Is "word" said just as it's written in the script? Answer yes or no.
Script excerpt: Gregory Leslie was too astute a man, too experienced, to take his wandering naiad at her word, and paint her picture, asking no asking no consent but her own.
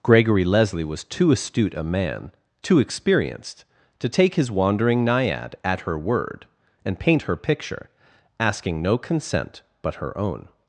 yes